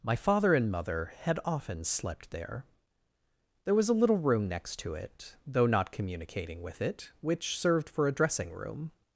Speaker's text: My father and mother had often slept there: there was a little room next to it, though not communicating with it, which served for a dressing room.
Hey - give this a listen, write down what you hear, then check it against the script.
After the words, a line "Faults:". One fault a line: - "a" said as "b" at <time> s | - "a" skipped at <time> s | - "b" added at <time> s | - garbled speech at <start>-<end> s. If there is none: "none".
My father and mother had often slept there: there was a little room next to it, though not communicating with it, which served for a dressing room.
Faults:
none